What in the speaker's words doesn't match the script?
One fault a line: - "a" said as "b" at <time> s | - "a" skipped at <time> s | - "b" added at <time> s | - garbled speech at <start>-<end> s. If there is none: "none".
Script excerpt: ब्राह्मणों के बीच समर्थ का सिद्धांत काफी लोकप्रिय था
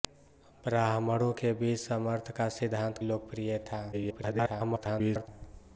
- "काफी" skipped at 3.0 s
- garbled speech at 3.9-5.3 s